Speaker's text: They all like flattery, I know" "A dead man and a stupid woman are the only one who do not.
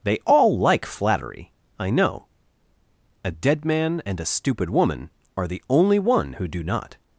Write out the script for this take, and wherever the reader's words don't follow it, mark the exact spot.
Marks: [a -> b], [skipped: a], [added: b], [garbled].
They all like flattery, I know" "A dead man and a stupid woman are the only one who do not.